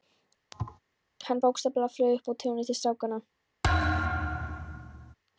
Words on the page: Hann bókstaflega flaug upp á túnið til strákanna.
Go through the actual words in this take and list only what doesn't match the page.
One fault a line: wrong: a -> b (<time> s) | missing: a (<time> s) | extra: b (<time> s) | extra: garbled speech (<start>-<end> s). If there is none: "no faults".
no faults